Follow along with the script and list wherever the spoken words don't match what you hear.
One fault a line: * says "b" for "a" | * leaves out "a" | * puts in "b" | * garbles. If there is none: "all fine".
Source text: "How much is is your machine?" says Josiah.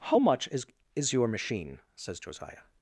all fine